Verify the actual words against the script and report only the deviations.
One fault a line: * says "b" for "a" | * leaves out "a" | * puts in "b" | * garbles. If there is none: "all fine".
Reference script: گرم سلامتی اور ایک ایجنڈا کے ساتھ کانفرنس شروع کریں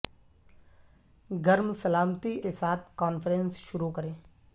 * leaves out "اور ایک ایجنڈا"